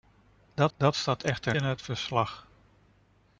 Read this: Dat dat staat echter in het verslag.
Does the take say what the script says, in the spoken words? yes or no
yes